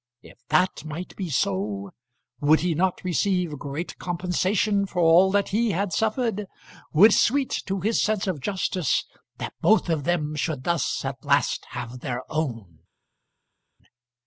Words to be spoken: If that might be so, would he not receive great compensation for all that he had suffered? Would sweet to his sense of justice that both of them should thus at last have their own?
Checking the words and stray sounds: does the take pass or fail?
pass